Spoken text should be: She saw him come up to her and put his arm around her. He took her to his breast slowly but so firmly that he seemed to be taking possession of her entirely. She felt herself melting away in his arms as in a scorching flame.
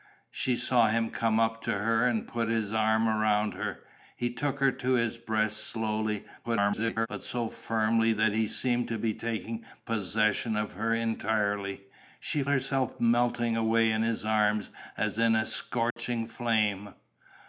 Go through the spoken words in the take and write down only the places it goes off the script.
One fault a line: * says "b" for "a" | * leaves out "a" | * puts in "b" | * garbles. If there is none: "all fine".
* garbles
* leaves out "felt"